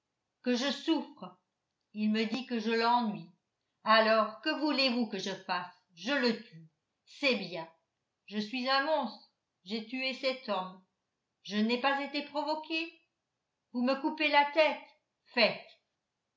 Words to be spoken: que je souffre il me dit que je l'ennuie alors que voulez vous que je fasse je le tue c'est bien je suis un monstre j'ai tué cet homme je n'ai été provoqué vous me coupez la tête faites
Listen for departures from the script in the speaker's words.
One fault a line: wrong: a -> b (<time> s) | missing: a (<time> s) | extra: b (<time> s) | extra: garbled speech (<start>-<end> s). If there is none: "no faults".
extra: pas (11.8 s)